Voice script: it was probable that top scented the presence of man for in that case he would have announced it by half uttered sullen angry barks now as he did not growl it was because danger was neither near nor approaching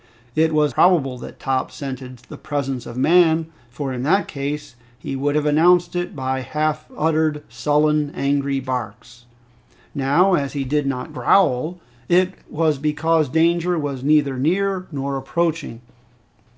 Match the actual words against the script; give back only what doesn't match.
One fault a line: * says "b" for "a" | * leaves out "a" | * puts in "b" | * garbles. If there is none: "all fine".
all fine